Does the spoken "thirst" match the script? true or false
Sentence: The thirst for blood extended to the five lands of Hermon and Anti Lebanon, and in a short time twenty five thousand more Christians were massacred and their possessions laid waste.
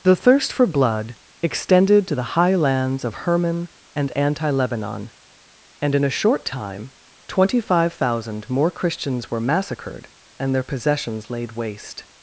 true